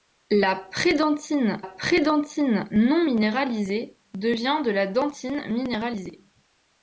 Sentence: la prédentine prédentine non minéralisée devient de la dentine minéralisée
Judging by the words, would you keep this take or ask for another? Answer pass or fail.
pass